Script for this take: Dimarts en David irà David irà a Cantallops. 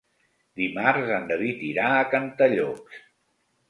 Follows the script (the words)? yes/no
no